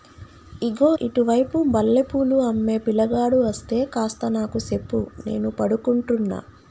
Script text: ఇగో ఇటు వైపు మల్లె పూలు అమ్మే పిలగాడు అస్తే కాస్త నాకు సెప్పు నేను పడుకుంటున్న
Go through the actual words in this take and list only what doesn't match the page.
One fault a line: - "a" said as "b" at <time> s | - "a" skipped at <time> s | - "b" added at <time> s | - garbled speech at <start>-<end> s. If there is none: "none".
none